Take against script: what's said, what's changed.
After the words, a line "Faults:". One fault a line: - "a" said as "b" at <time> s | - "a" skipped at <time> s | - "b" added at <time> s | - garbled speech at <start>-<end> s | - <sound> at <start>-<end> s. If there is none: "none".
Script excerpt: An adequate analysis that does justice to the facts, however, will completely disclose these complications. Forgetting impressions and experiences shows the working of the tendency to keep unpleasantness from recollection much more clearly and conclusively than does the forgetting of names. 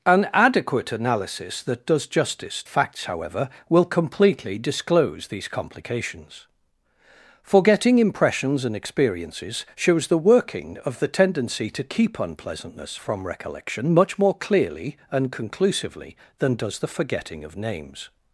An adequate analysis that does justice facts, however, will completely disclose these complications. Forgetting impressions and experiences shows the working of the tendency to keep unpleasantness from recollection much more clearly and conclusively than does the forgetting of names.
Faults:
- "to the" skipped at 2.6 s